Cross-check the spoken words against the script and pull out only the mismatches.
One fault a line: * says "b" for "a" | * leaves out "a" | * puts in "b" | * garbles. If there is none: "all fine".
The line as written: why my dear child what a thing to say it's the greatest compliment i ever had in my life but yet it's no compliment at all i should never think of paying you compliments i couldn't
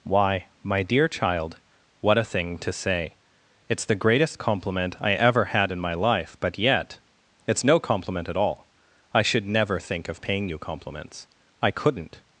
all fine